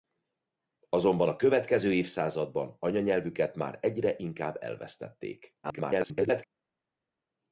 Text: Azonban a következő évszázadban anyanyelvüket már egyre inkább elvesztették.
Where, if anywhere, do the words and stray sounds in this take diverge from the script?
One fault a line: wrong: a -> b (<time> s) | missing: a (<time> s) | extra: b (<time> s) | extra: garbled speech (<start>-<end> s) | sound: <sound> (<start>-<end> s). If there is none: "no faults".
extra: garbled speech (5.6-6.4 s)